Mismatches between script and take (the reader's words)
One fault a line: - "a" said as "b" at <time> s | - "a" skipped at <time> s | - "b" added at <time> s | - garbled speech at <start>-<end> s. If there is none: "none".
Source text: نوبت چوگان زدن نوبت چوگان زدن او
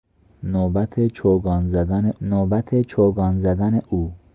none